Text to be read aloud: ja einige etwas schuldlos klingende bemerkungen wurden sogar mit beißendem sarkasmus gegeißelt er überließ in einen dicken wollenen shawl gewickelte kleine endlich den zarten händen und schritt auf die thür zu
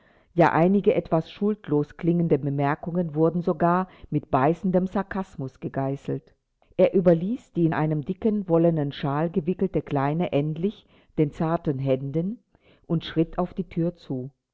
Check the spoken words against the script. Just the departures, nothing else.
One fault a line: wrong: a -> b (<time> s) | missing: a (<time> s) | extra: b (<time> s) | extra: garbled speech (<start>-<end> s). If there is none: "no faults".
extra: die (7.5 s)